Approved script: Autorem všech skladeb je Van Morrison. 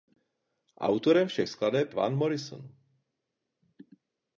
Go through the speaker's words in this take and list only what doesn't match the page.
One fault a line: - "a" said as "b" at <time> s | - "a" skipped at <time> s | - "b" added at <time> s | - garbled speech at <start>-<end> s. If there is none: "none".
- "je" skipped at 1.9 s